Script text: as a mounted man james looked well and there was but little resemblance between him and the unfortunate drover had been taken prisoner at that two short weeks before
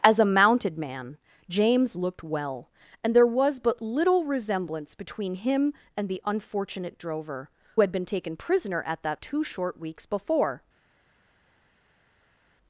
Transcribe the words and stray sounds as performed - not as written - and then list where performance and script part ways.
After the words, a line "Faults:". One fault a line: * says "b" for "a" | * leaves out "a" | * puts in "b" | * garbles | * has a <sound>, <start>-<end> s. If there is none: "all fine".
as a mounted man james looked well and there was but little resemblance between him and the unfortunate drover had been taken prisoner at that two short weeks before
Faults:
all fine